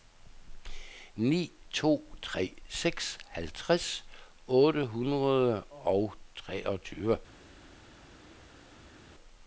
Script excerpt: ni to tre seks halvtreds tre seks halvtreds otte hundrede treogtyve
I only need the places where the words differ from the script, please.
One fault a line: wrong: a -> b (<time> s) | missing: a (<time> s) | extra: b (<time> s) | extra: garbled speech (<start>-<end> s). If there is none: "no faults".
missing: tre seks halvtreds (4.0 s)
extra: og (5.6 s)